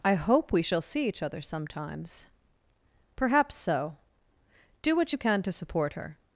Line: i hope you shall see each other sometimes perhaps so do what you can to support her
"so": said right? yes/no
yes